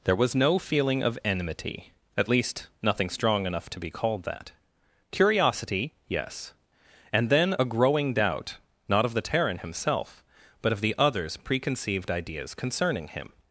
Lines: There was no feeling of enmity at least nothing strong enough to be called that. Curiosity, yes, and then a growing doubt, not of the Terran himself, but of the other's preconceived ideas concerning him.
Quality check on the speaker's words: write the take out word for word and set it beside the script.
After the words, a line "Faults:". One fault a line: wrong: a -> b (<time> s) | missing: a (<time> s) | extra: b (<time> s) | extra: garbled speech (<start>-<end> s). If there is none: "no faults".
There was no feeling of enmity at least nothing strong enough to be called that. Curiosity, yes, and then a growing doubt, not of the Terran himself, but of the other's preconceived ideas concerning him.
Faults:
no faults